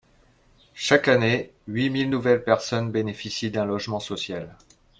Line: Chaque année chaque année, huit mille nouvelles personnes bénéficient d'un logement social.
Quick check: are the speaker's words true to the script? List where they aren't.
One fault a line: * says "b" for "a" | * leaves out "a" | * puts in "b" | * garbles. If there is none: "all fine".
* leaves out "chaque année"